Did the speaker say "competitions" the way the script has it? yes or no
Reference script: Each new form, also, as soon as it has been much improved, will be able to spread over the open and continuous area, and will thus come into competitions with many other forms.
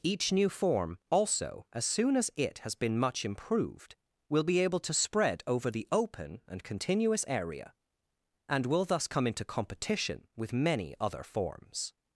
no